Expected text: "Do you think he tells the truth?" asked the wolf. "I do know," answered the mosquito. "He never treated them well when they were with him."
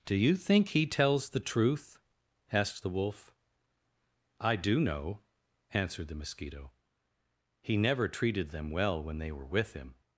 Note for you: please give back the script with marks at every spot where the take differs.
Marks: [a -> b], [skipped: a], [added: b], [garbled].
"Do you think he tells the truth?" asked the wolf. "I do know," answered the mosquito. "He never treated them well when they were with him."